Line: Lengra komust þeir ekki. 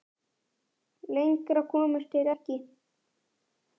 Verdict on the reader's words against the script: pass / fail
pass